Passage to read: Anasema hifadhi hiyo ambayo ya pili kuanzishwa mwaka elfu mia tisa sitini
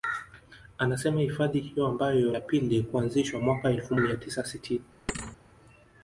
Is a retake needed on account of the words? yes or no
no